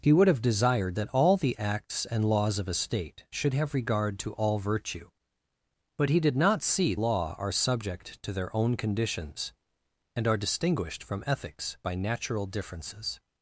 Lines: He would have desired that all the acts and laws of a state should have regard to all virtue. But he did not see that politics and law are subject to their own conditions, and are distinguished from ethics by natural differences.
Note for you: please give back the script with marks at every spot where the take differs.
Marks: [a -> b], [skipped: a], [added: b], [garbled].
He would have desired that all the acts and laws of a state should have regard to all virtue. But he did not see [skipped: that politics and] law are subject to their own conditions, and are distinguished from ethics by natural differences.